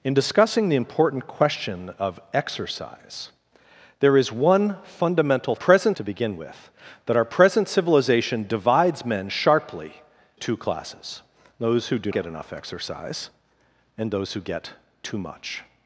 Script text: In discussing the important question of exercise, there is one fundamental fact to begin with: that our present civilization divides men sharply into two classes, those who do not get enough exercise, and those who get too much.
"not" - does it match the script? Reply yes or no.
no